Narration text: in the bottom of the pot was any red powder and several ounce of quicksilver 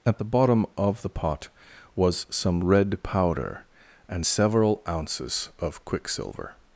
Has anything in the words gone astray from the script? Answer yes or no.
yes